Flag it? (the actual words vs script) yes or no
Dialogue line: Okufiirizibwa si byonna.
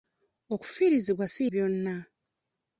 no